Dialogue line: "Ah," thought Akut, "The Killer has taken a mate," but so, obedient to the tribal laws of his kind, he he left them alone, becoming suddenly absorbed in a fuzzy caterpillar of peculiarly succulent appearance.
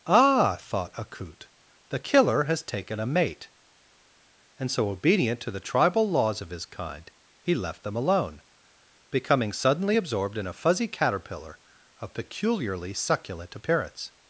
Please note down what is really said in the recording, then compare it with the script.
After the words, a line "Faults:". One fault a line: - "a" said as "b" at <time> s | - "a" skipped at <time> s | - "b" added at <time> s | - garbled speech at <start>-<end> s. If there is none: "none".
"Ah," thought Akut, "The Killer has taken a mate," and so, obedient to the tribal laws of his kind, he left them alone, becoming suddenly absorbed in a fuzzy caterpillar of peculiarly succulent appearance.
Faults:
- "but" said as "and" at 4.6 s
- "he" skipped at 7.5 s